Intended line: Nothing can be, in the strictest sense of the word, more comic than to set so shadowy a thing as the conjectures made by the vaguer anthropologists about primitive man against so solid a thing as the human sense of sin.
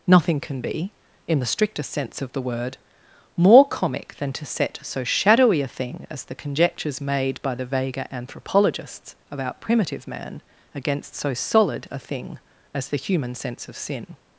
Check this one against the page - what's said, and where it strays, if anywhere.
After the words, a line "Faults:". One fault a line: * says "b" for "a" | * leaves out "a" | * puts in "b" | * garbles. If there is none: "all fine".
Nothing can be, in the strictest sense of the word, more comic than to set so shadowy a thing as the conjectures made by the vaguer anthropologists about primitive man against so solid a thing as the human sense of sin.
Faults:
all fine